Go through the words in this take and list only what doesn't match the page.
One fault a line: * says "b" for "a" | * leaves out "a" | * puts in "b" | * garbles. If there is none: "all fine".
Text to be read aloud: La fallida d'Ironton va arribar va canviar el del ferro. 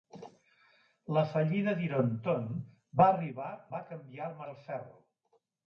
all fine